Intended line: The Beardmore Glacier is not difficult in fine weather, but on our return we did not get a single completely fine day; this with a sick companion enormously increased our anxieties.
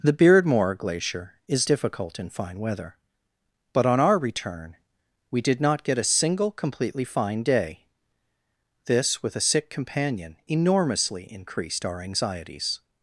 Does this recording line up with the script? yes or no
no